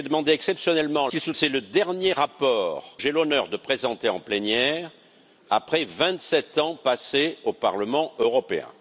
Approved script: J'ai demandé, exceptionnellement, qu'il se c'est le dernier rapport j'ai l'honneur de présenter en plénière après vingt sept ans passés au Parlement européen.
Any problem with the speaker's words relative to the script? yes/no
no